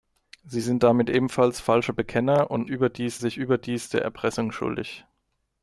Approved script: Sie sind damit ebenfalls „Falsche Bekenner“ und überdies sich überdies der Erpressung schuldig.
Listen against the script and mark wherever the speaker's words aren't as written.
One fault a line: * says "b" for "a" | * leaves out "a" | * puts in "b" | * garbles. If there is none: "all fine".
all fine